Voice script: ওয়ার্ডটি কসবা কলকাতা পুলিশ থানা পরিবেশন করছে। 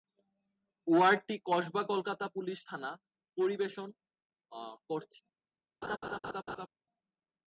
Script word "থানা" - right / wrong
right